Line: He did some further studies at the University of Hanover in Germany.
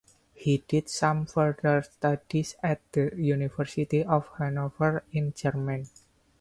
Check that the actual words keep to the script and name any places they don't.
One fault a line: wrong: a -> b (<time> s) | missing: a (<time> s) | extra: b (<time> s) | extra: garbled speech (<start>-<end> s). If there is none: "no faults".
no faults